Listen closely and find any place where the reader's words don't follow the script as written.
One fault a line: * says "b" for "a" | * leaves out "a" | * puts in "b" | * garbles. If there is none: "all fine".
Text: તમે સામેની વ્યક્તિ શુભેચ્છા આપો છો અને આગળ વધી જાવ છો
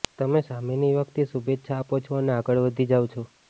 all fine